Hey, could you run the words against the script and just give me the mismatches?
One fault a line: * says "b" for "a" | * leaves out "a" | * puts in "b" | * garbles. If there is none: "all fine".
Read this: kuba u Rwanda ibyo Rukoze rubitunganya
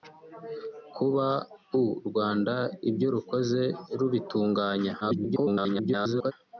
* garbles